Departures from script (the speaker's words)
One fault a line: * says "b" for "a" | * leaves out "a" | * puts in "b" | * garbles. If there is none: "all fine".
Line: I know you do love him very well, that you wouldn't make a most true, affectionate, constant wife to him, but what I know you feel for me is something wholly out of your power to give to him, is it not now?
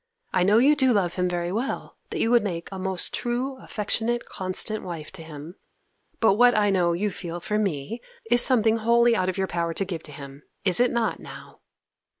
* says "would" for "wouldn't"